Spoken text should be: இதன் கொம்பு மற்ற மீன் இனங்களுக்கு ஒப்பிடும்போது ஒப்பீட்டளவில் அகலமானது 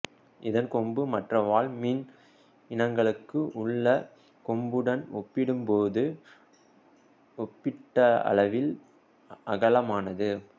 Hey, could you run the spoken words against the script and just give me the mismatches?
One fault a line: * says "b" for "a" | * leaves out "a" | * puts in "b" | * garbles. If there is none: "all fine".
* puts in "வாள்"
* puts in "உள்ள கொம்புடன்"